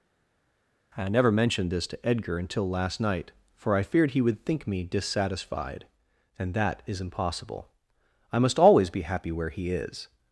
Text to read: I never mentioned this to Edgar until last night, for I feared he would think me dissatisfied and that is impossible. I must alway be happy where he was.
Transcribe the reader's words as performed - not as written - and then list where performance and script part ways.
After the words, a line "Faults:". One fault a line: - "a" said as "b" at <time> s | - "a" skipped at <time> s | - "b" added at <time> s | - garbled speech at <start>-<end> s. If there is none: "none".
I never mentioned this to Edgar until last night, for I feared he would think me dissatisfied and that is impossible. I must always be happy where he is.
Faults:
- "alway" said as "always" at 8.6 s
- "was" said as "is" at 9.7 s